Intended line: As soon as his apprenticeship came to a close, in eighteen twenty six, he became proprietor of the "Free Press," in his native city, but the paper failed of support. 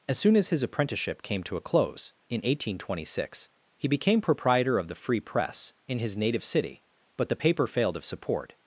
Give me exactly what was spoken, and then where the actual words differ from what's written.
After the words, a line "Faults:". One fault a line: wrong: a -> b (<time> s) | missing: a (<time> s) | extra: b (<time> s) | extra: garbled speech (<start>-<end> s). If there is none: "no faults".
As soon as his apprenticeship came to a close, in eighteen twenty six, he became proprietor of the "Free Press," in his native city, but the paper failed of support.
Faults:
no faults